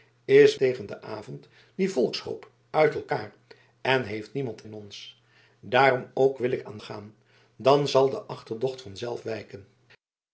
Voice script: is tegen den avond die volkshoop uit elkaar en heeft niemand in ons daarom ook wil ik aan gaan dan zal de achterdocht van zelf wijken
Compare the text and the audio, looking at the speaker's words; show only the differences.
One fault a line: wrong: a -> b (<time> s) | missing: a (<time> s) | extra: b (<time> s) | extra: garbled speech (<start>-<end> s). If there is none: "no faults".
no faults